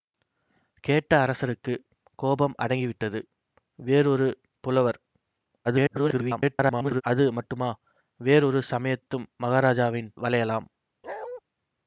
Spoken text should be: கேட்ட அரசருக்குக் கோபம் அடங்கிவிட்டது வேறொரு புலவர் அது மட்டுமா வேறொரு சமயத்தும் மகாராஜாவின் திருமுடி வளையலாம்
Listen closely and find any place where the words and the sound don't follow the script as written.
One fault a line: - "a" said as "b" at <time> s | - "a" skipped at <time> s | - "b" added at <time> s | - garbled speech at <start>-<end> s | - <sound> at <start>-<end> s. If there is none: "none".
- garbled speech at 5.6-7.0 s
- "திருமுடி" skipped at 10.1 s
- bark at 11.0-11.4 s